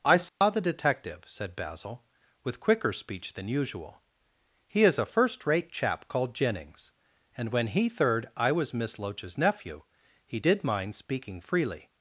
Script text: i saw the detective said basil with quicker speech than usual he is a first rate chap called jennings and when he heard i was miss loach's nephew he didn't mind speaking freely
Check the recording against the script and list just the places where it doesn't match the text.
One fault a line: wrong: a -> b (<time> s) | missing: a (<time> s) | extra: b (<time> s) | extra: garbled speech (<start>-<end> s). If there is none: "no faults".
wrong: heard -> third (7.9 s)
wrong: didn't -> did (10.4 s)